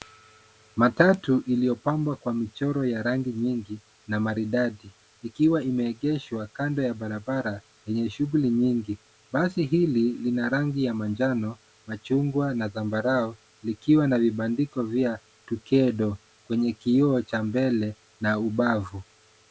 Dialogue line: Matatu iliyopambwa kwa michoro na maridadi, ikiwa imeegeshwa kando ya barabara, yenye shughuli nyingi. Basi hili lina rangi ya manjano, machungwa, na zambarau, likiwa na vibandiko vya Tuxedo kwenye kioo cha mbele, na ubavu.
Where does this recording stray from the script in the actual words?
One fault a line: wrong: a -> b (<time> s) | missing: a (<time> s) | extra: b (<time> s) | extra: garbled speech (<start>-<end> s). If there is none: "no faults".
extra: ya rangi nyingi (2.9 s)